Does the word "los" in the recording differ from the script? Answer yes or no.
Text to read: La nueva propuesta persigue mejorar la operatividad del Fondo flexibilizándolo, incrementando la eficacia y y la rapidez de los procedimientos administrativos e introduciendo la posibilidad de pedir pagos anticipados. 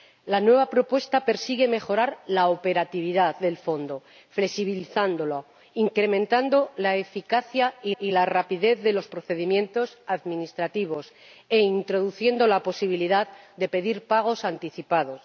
no